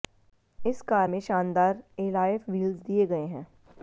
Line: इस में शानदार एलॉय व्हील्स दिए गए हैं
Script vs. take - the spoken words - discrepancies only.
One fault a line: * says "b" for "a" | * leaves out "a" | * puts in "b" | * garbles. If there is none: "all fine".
* puts in "कार"